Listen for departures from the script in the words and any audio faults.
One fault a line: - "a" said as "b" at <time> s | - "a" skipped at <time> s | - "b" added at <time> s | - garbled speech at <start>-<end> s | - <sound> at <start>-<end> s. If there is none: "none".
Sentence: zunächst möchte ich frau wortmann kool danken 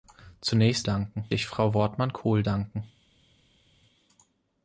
- "möchte" said as "danken" at 0.8 s